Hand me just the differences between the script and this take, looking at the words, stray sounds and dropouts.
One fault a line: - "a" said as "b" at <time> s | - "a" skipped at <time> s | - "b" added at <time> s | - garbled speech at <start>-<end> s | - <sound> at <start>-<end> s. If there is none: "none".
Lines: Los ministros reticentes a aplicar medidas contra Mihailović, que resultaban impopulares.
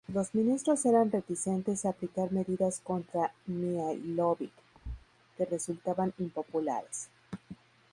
- "eran" added at 0.9 s
- thud at 4.7-5.1 s